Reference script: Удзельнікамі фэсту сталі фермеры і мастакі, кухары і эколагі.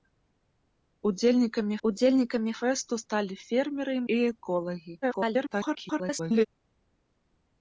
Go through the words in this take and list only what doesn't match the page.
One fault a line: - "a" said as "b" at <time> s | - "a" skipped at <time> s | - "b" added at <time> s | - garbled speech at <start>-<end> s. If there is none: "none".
- "удзельнікамі" added at 1.9 s
- "мастакі кухары" skipped at 4.0 s
- garbled speech at 5.0-6.5 s